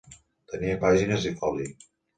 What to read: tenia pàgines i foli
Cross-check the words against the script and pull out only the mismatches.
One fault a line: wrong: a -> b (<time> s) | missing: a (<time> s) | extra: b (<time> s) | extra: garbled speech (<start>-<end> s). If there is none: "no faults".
no faults